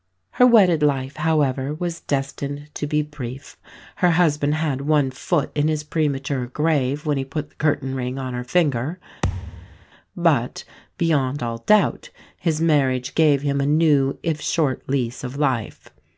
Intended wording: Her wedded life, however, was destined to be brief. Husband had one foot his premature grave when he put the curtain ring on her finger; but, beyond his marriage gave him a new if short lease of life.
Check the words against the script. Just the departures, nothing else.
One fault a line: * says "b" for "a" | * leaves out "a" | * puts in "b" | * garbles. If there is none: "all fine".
* puts in "Her"
* puts in "in"
* puts in "all doubt"